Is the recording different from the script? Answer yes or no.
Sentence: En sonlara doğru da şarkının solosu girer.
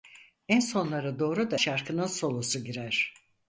no